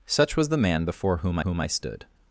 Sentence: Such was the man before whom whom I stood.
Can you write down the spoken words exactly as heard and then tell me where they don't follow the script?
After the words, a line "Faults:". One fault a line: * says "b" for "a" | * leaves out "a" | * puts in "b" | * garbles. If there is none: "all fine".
Such was the man before whom whom I stood.
Faults:
all fine